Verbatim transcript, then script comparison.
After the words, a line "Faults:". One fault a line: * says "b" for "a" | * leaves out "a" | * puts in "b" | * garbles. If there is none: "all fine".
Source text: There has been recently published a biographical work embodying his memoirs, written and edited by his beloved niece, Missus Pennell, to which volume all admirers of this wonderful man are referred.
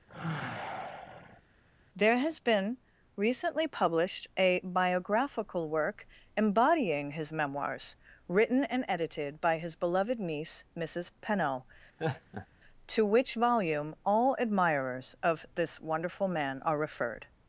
There has been recently published a biographical work embodying his memoirs, written and edited by his beloved niece, Missus Pennell, to which volume all admirers of this wonderful man are referred.
Faults:
all fine